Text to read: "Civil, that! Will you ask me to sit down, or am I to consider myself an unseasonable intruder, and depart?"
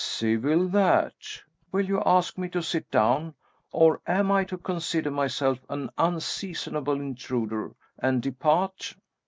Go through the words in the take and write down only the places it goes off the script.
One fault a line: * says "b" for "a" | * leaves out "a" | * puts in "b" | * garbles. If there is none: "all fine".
all fine